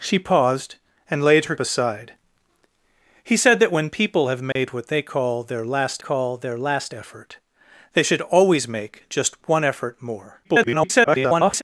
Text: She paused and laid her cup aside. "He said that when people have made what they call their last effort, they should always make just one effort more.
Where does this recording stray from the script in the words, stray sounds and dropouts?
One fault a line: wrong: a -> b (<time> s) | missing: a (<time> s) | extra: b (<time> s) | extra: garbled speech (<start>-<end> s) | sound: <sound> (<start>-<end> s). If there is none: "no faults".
missing: cup (1.6 s)
sound: dropout (4.5-4.6 s)
extra: call their last (6.0 s)
extra: garbled speech (10.4-11.6 s)